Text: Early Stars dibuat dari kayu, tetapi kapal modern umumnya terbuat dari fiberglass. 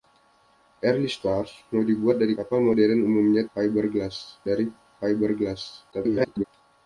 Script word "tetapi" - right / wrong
wrong